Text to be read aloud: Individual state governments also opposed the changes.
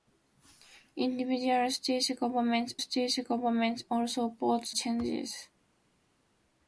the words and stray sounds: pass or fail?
fail